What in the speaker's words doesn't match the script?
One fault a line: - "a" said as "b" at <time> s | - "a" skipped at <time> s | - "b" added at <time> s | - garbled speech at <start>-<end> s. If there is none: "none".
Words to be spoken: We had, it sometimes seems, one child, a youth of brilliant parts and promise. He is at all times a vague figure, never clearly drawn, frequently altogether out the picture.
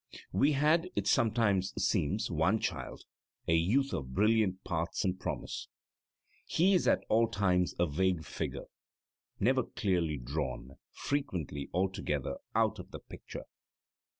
- "of" added at 12.8 s